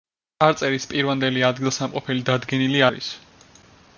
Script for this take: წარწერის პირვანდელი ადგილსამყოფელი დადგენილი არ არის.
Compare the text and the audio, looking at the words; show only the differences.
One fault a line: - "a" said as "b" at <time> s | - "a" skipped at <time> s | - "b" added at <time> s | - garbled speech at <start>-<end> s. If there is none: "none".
- "არ" skipped at 2.8 s